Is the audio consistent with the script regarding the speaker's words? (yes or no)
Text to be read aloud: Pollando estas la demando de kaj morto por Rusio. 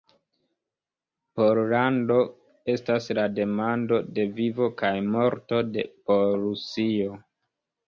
no